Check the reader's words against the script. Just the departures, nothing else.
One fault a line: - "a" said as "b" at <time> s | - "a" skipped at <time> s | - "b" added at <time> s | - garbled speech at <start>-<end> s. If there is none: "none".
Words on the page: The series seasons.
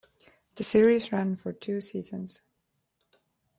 - "ran for two" added at 1.1 s